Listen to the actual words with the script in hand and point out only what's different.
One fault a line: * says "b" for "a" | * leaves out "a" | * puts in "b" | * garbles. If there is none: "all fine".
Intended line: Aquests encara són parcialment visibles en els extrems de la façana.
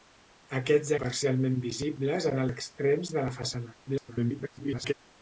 * leaves out "encara són"
* leaves out "els"
* garbles